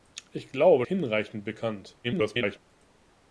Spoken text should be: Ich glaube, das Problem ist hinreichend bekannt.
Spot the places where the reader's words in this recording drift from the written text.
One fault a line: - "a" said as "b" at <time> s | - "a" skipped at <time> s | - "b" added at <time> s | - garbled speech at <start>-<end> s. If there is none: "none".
- "das Problem ist" skipped at 0.8 s
- garbled speech at 2.0-2.6 s